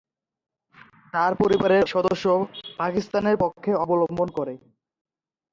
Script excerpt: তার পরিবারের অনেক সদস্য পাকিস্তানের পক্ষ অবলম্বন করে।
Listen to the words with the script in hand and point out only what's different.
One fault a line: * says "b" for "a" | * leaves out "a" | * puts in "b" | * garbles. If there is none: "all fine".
* leaves out "অনেক"